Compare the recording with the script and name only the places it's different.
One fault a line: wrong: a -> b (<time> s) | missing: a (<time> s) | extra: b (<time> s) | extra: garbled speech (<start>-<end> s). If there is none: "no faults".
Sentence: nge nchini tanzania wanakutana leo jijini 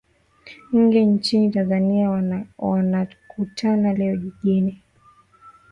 no faults